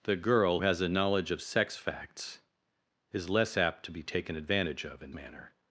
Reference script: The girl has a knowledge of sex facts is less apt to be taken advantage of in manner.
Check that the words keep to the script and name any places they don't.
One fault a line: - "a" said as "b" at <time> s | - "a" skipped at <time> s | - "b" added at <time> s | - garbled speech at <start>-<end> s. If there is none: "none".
none